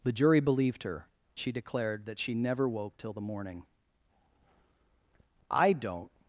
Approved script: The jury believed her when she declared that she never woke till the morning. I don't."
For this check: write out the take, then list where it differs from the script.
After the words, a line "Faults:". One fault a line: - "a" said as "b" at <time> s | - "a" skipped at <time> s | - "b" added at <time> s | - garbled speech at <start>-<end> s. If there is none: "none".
The jury believed her she declared that she never woke till the morning. I don't."
Faults:
- "when" skipped at 1.1 s